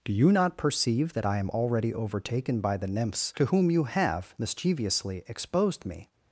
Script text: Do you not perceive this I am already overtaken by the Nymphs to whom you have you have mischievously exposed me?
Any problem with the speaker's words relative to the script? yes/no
yes